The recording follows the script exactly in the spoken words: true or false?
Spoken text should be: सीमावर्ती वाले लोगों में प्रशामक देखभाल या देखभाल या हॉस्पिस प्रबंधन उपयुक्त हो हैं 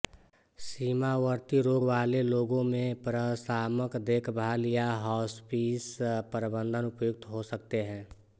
false